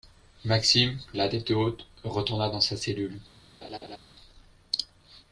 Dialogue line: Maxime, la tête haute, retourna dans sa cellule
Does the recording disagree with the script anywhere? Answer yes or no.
no